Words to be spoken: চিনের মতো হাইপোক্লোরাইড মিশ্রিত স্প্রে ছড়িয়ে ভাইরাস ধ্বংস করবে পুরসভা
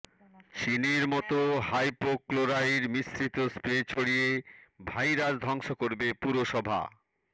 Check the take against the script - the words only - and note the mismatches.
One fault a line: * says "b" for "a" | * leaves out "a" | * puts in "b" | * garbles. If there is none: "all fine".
all fine